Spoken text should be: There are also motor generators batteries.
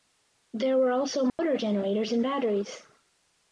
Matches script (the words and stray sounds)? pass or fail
fail